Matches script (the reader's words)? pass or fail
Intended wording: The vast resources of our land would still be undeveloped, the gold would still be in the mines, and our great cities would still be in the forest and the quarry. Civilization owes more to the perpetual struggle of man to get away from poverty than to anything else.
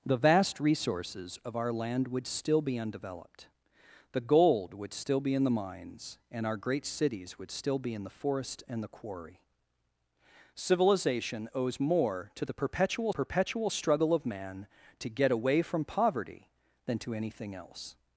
fail